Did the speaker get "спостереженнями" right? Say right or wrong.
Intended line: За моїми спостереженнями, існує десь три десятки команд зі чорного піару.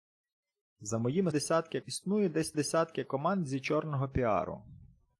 wrong